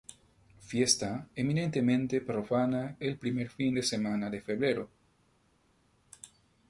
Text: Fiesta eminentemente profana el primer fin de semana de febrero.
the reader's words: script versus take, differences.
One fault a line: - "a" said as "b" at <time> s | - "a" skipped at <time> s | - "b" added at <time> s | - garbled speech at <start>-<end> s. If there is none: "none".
none